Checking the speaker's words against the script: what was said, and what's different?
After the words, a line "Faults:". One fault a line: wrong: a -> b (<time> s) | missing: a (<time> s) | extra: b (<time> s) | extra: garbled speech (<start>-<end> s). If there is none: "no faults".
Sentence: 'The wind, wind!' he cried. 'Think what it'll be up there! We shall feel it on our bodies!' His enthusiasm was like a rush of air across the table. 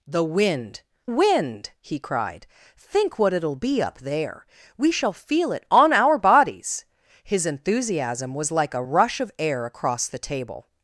'The wind, wind!' he cried. 'Think what it'll be up there! We shall feel it on our bodies!' His enthusiasm was like a rush of air across the table.
Faults:
no faults